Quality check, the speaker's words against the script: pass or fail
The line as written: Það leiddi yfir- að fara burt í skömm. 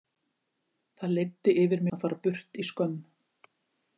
pass